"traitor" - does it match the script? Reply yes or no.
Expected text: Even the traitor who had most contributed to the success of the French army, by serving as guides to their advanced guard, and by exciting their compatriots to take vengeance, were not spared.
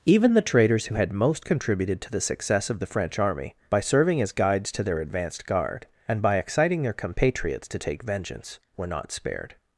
no